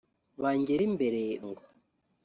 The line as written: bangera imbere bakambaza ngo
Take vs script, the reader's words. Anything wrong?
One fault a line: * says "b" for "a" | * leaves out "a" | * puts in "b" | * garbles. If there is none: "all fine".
* leaves out "bakambaza"